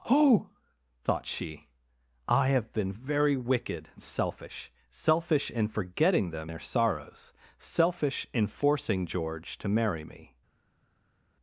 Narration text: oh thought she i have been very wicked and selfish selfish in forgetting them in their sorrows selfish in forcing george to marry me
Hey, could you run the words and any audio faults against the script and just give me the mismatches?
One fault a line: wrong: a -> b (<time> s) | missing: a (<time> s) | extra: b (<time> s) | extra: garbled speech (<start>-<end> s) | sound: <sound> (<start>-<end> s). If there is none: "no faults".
missing: in (6.5 s)